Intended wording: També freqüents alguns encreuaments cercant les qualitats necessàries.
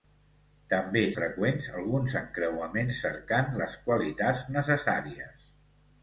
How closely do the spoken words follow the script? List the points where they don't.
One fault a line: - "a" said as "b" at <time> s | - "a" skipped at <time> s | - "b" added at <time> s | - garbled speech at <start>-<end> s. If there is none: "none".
none